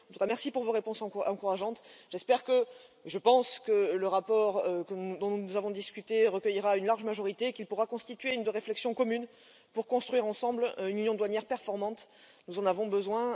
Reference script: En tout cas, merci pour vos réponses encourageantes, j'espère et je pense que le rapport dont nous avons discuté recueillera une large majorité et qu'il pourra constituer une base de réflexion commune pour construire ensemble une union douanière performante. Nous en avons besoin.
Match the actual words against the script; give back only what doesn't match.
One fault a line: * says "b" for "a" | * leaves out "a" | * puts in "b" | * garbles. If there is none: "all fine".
* leaves out "base"